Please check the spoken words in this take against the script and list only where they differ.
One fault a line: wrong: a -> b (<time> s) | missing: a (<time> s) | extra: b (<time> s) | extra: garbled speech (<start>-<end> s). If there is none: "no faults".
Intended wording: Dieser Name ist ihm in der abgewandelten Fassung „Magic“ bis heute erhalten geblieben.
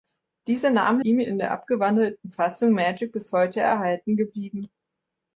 missing: ist (1.1 s)